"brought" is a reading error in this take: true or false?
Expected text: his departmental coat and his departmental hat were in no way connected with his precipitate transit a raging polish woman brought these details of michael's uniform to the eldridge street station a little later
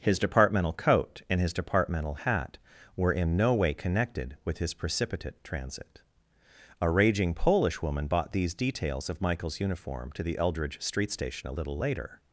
true